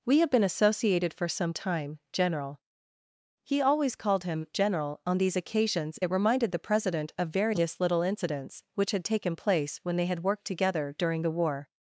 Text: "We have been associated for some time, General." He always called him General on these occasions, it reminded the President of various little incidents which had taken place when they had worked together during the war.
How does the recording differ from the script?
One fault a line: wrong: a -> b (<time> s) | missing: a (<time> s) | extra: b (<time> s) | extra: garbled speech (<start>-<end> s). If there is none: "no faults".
no faults